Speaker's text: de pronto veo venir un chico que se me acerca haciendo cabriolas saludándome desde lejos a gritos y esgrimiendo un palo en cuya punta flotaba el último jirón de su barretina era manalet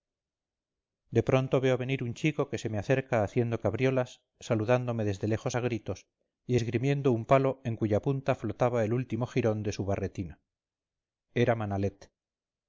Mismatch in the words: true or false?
false